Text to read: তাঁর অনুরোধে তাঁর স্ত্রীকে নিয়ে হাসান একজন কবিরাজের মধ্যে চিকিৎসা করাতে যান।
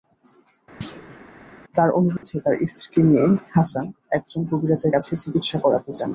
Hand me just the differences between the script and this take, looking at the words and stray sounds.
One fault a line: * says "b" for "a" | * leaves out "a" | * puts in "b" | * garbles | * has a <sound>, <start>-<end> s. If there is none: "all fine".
* has a thud, 0.8-1.2 s
* has a dropout, 2.2-2.2 s
* says "কাছে" for "মধ্যে"